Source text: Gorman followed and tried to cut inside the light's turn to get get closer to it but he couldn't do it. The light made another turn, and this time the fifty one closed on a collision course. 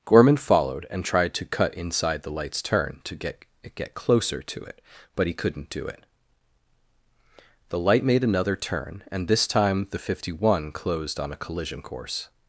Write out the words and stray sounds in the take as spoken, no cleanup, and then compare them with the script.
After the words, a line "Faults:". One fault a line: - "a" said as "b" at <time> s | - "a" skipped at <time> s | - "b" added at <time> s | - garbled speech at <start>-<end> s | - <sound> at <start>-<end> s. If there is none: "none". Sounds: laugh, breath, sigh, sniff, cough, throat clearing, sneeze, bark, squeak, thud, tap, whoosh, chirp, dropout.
Gorman followed and tried to cut inside the light's turn to get get closer to it but he couldn't do it. The light made another turn, and this time the fifty one closed on a collision course.
Faults:
none